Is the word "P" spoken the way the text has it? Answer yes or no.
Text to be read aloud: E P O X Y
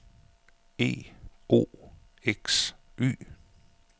no